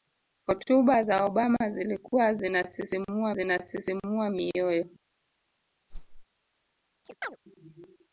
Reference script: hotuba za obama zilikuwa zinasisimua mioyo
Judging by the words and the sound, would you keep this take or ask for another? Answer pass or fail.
fail